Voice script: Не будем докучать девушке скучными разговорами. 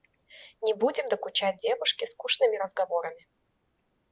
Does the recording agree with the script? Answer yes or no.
yes